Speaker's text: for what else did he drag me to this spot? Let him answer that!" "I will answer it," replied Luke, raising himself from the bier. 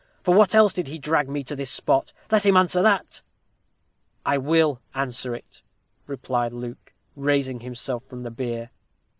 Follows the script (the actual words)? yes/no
yes